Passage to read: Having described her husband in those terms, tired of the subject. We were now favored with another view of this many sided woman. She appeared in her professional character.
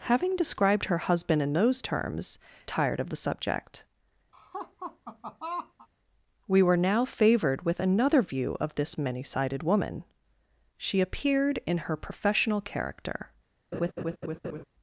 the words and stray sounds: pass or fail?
fail